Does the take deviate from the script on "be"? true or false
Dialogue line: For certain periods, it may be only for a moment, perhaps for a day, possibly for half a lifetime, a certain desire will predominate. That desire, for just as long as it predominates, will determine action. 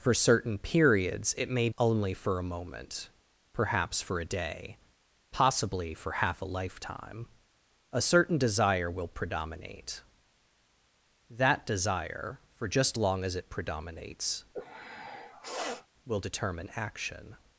true